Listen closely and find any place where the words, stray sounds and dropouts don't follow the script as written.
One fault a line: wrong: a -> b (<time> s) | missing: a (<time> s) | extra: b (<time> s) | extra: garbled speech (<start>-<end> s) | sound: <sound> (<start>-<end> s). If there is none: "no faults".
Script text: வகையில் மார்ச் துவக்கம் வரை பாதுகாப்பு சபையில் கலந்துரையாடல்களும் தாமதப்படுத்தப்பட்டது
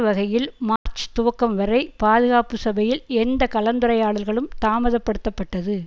sound: dropout (0.8-0.9 s)
extra: எந்த (3.2 s)